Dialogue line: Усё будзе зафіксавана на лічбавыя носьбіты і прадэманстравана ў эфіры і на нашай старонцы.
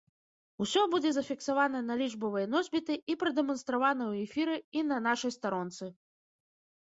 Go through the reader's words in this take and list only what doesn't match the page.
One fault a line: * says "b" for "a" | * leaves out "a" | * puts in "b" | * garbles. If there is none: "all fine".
all fine